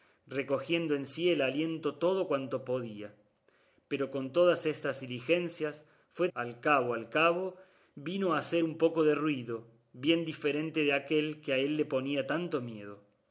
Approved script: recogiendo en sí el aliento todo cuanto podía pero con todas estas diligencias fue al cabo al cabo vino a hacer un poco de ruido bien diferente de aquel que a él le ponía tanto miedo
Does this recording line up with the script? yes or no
yes